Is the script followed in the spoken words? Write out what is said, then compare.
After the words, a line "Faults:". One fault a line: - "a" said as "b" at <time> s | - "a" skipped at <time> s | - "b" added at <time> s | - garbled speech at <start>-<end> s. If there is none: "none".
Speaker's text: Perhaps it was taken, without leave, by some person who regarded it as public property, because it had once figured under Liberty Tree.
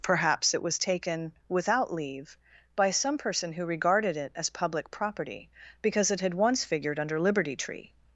Perhaps it was taken, without leave, by some person who regarded it as public property, because it had once figured under Liberty Tree.
Faults:
none